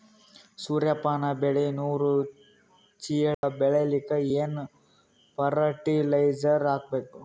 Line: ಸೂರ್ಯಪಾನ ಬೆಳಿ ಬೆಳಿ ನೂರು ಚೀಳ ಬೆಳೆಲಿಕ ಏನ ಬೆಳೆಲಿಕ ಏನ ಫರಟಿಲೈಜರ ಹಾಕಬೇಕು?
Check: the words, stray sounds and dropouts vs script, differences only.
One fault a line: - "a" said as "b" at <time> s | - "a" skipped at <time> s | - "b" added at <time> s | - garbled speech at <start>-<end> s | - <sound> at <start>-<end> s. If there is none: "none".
- "ಬೆಳಿ" skipped at 1.6 s
- dropout at 3.3-3.4 s
- "ಬೆಳೆಲಿಕ ಏನ" skipped at 4.6 s